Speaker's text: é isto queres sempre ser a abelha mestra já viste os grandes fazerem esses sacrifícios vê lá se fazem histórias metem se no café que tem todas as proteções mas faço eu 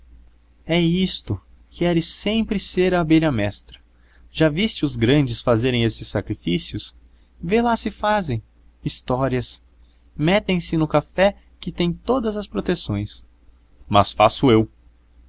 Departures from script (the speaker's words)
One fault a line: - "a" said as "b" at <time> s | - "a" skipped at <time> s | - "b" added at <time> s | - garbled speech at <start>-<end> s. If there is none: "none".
none